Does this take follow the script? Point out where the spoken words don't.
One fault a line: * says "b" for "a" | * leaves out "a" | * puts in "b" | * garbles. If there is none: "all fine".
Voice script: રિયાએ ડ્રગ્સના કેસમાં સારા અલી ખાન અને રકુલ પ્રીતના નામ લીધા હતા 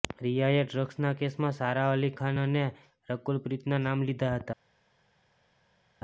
all fine